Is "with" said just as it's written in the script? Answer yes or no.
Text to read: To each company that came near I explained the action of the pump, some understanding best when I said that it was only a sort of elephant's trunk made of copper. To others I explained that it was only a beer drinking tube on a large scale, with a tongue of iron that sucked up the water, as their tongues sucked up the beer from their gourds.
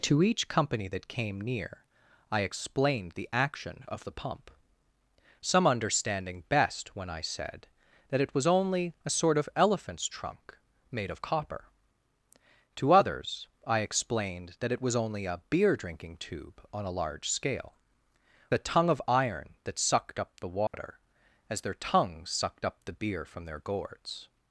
no